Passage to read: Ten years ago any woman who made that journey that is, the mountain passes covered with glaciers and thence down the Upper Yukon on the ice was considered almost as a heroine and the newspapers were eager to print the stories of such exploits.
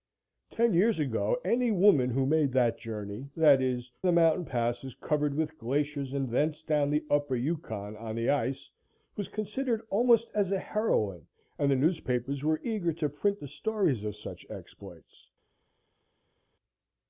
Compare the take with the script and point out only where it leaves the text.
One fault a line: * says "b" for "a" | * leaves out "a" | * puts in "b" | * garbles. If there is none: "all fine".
all fine